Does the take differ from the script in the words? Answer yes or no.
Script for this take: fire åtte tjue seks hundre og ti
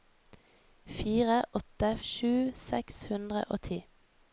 no